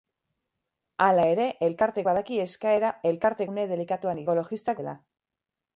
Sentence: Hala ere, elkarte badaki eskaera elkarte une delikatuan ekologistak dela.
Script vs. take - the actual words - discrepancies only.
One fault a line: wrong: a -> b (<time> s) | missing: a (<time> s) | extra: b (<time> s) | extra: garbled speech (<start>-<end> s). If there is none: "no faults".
no faults